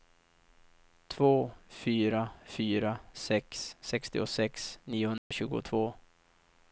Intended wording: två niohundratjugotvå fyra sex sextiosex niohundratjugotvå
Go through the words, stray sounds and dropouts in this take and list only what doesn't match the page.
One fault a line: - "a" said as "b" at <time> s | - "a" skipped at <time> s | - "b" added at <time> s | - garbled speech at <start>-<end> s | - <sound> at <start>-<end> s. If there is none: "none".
- "niohundratjugotvå" said as "fyra" at 1.7 s
- dropout at 5.2-5.3 s